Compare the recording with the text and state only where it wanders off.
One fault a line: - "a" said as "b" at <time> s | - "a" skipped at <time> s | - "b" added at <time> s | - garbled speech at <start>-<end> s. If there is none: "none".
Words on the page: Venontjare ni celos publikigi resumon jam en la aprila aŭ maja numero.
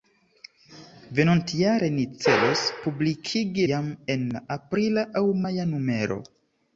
- "resumon" skipped at 3.7 s